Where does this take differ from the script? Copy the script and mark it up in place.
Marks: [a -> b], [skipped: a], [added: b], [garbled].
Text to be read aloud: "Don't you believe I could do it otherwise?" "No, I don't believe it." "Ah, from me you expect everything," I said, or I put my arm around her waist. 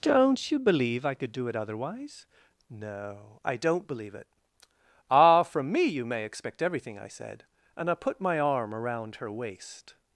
"Don't you believe I could do it otherwise?" "No, I don't believe it." "Ah, from me you [added: may] expect everything," I said, [or -> and] I put my arm around her waist.